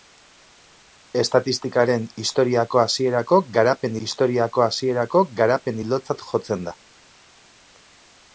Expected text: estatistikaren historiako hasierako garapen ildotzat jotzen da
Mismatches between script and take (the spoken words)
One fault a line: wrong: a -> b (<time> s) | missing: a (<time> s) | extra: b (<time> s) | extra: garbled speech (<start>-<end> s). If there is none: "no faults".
extra: historiako hasierako garapen (4.1 s)